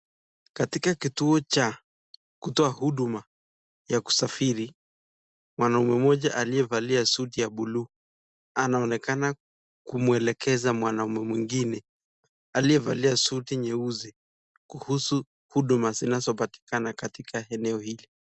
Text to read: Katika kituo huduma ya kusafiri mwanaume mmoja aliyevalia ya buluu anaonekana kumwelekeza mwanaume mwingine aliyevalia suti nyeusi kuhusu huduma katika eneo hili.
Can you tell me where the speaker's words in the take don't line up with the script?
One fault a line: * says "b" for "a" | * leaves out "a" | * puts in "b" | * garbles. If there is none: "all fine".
* puts in "cha kutoa"
* puts in "suti"
* puts in "zinazopatikana"